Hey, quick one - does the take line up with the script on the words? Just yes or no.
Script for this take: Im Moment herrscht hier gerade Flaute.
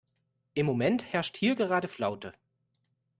yes